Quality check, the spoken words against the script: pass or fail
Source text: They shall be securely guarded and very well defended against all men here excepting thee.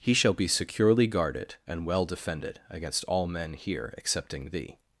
fail